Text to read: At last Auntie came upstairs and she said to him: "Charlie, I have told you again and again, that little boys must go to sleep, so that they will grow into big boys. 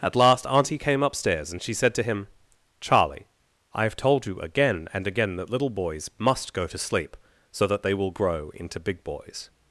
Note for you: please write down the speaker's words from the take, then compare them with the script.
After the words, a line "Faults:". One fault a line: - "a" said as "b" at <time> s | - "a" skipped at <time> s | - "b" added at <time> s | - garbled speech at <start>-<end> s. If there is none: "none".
At last Auntie came upstairs and she said to him: "Charlie, I have told you again and again, that little boys must go to sleep, so that they will grow into big boys.
Faults:
none